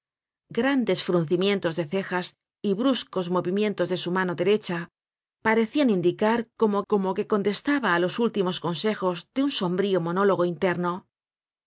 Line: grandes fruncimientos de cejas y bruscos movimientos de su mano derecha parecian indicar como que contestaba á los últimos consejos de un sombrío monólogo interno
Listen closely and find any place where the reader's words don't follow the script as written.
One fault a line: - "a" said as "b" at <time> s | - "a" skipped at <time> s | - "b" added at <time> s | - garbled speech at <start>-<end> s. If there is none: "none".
- "como" added at 6.9 s